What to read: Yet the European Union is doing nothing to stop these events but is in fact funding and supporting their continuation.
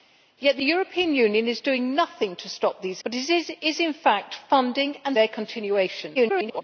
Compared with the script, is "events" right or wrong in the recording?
wrong